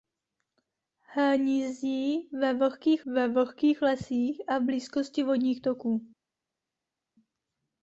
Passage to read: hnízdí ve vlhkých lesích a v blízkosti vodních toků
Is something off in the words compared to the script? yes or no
yes